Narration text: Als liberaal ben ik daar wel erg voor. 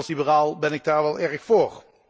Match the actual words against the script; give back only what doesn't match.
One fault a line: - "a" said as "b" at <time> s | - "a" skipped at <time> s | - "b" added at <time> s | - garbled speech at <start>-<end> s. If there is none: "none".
none